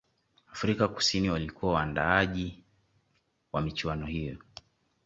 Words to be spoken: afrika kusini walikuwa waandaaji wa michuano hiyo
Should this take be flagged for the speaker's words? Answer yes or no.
no